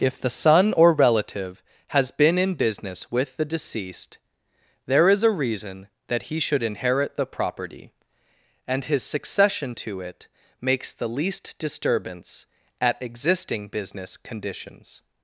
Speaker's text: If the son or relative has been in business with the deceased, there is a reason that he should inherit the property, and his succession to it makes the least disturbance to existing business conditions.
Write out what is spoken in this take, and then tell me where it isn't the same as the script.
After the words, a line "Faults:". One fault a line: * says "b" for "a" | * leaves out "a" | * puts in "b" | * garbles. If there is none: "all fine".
If the son or relative has been in business with the deceased, there is a reason that he should inherit the property, and his succession to it makes the least disturbance at existing business conditions.
Faults:
* says "at" for "to"